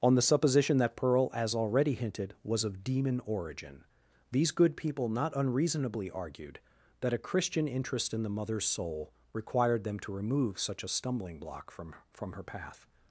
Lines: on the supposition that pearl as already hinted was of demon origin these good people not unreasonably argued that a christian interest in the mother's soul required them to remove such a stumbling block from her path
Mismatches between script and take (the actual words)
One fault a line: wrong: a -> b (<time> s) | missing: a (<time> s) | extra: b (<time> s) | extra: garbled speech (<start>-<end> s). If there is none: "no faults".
extra: from (12.1 s)